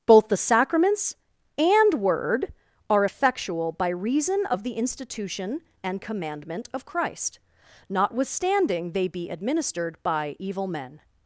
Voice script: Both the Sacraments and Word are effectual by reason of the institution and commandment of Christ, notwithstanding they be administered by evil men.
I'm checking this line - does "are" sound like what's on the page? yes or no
yes